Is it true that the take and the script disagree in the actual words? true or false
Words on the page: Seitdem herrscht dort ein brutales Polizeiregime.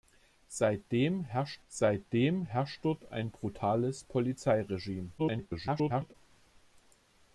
true